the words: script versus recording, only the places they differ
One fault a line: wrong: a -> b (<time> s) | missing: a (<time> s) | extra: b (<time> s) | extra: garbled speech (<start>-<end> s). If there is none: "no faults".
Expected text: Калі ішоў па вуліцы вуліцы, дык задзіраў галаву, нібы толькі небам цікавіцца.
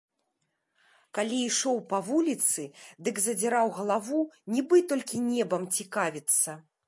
missing: вуліцы (2.6 s)